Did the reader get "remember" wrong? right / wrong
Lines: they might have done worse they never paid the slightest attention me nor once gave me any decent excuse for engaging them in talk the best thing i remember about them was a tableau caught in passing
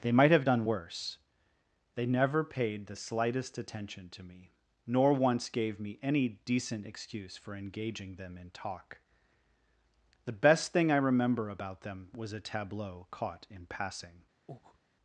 right